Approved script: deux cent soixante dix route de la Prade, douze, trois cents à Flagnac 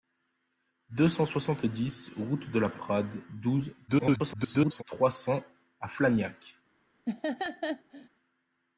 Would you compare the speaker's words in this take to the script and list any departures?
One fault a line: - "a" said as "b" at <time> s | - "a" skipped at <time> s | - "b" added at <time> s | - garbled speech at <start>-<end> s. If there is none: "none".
- garbled speech at 3.9-4.8 s